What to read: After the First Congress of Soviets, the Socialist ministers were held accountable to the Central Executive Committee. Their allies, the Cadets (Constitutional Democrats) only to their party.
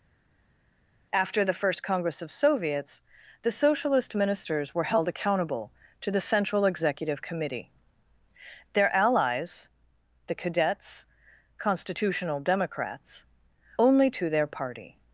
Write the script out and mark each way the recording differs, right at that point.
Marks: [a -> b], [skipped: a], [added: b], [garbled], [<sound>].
After the First Congress of Soviets, the Socialist ministers were held accountable to the Central Executive Committee. Their allies, the Cadets (Constitutional Democrats) only to their party.